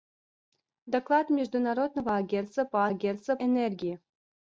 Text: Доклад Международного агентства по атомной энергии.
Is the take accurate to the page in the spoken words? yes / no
no